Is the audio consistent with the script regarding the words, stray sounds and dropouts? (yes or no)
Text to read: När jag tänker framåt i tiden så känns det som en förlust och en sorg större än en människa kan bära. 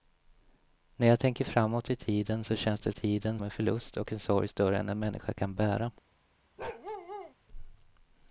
no